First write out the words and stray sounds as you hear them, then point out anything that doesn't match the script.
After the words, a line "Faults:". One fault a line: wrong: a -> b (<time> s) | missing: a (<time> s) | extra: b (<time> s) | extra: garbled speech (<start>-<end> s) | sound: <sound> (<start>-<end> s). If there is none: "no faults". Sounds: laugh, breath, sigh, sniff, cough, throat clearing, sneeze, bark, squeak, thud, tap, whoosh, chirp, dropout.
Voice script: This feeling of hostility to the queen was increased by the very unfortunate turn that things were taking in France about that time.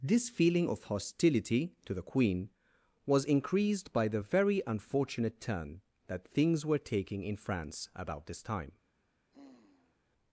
This feeling of hostility to the queen was increased by the very unfortunate turn that things were taking in France about this time.
Faults:
wrong: that -> this (8.3 s)
sound: sigh (9.3-10.0 s)